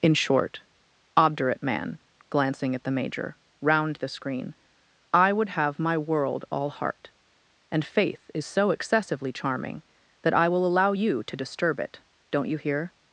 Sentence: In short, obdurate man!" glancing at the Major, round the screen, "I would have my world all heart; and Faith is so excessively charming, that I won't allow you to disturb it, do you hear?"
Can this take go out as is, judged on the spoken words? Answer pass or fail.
fail